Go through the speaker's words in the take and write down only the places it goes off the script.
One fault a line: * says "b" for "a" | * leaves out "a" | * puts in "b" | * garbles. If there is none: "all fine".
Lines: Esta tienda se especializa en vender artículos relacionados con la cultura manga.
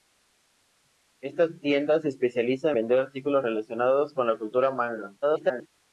* leaves out "en"
* garbles